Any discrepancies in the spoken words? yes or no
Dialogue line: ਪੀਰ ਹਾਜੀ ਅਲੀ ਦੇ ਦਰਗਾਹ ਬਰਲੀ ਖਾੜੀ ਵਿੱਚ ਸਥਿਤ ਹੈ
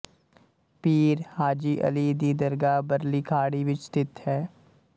yes